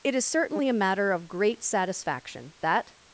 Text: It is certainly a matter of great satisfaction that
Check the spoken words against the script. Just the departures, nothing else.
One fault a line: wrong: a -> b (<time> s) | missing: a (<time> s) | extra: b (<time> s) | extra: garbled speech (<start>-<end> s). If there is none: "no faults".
no faults